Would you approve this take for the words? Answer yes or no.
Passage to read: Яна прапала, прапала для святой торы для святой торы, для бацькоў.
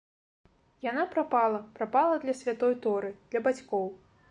no